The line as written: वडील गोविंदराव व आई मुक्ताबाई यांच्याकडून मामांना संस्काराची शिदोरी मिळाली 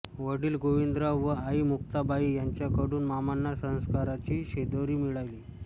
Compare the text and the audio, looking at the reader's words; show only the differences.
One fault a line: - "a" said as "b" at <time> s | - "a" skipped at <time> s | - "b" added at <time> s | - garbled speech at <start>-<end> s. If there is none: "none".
none